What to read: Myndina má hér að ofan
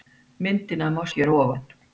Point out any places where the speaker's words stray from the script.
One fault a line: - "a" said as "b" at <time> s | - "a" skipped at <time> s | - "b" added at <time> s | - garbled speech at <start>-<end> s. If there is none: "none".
none